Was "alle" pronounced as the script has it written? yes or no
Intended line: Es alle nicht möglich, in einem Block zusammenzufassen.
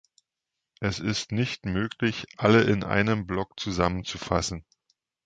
no